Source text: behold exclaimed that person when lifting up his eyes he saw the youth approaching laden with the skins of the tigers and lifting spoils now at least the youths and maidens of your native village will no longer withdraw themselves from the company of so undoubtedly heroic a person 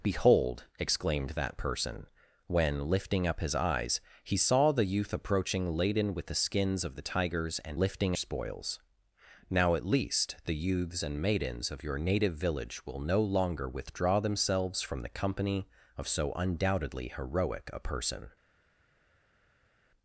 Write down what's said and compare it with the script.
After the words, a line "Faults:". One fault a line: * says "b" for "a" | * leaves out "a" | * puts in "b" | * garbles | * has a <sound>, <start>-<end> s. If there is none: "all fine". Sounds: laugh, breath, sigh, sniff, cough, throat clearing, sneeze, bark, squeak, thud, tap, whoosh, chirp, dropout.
behold exclaimed that person when lifting up his eyes he saw the youth approaching laden with the skins of the tigers and lifting spoils now at least the youths and maidens of your native village will no longer withdraw themselves from the company of so undoubtedly heroic a person
Faults:
all fine